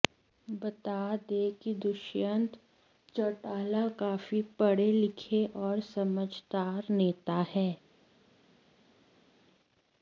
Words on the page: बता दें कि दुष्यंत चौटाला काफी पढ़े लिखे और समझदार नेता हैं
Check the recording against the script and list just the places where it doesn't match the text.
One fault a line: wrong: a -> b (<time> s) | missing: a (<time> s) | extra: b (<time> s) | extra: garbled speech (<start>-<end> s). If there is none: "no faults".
no faults